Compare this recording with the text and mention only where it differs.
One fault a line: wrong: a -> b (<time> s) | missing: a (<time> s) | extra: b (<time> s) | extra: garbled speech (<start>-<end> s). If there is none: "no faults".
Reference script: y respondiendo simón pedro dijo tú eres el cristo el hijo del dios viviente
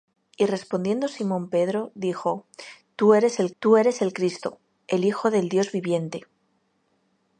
extra: tú eres el (3.6 s)